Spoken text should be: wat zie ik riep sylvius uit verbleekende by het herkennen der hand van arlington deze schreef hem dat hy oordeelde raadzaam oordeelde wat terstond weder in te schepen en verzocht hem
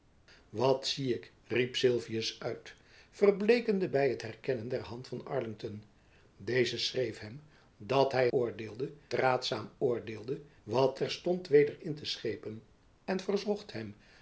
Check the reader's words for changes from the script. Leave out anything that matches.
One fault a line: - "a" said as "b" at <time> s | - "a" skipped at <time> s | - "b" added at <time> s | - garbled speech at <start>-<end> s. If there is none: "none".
none